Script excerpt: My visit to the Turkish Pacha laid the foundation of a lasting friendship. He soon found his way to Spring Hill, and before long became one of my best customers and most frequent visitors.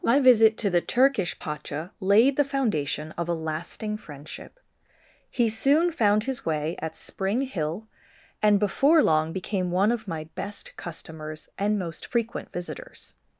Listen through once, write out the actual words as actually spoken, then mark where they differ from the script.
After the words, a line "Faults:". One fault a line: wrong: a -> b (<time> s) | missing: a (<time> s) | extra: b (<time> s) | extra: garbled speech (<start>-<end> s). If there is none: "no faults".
My visit to the Turkish Pacha laid the foundation of a lasting friendship. He soon found his way at Spring Hill, and before long became one of my best customers and most frequent visitors.
Faults:
wrong: to -> at (6.8 s)